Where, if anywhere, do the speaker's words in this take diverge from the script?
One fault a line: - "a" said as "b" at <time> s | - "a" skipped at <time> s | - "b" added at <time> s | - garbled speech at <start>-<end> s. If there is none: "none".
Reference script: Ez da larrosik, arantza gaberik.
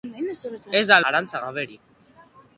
- "larrosik" skipped at 1.0 s